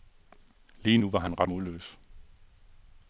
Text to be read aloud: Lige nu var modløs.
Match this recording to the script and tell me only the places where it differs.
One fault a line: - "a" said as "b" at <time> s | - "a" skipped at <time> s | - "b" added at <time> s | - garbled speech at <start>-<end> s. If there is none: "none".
- "han ret" added at 1.2 s